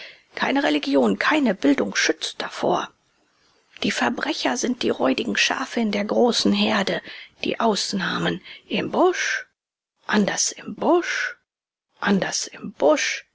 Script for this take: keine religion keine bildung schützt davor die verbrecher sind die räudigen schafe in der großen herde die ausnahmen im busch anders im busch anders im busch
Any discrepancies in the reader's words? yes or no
no